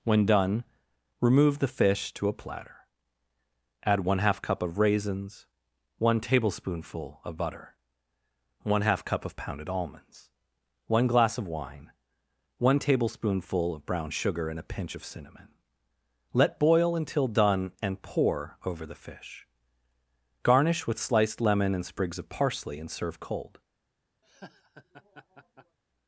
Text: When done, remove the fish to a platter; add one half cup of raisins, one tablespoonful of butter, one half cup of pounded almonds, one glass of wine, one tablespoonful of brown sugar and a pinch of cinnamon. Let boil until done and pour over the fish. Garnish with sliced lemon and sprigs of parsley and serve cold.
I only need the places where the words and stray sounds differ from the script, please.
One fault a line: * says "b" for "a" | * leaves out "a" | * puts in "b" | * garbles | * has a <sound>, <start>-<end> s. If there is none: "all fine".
* has a laugh, 24.2-25.8 s